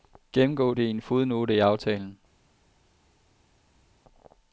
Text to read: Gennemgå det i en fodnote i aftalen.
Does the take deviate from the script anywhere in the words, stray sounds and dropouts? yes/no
no